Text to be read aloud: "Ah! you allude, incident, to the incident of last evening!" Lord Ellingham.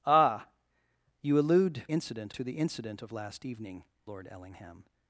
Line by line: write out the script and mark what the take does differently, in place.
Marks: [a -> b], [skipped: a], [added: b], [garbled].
"Ah! you allude, incident, to the incident of last evening!" Lord Ellingham.